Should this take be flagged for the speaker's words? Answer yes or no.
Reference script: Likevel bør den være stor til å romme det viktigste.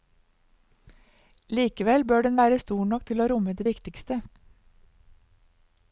yes